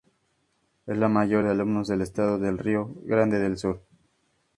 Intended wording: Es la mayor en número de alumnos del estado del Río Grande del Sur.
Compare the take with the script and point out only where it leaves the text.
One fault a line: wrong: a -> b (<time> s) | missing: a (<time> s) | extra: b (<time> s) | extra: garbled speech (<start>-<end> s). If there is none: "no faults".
missing: en número (1.4 s)